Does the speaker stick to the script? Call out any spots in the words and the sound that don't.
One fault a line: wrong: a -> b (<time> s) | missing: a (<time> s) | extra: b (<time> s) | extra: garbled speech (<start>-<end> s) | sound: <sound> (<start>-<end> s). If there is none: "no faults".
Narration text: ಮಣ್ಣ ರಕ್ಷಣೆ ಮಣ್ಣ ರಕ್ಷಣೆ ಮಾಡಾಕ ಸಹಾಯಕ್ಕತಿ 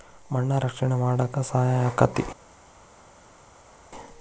missing: ಮಣ್ಣ ರಕ್ಷಣೆ (0.9 s)